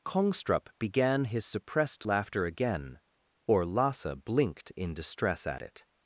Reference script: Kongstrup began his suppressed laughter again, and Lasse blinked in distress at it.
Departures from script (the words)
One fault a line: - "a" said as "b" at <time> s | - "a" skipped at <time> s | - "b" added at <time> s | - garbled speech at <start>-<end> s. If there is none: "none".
- "and" said as "or" at 3.5 s